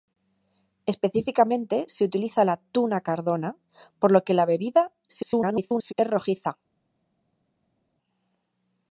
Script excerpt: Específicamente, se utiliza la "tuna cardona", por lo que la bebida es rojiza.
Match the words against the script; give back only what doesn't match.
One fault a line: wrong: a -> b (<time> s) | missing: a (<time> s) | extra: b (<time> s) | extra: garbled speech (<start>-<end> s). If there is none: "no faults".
extra: garbled speech (5.1-5.9 s)